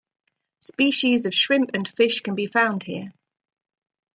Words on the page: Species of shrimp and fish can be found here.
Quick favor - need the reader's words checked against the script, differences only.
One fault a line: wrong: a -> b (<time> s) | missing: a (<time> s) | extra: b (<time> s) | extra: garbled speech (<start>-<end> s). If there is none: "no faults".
no faults